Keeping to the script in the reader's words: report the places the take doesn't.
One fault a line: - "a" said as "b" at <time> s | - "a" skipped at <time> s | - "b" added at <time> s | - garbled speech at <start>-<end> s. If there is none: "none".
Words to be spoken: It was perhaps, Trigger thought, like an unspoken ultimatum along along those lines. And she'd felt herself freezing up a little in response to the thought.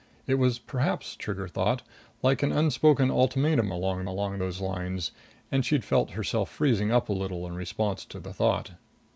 none